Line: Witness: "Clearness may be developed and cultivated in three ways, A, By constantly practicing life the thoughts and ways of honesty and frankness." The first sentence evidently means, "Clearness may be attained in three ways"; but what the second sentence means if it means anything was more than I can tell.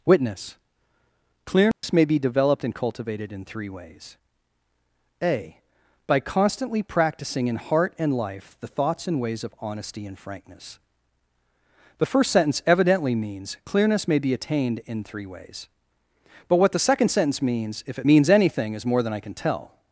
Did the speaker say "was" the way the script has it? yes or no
no